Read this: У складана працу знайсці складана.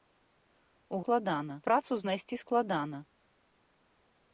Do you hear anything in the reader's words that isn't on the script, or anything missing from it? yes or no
no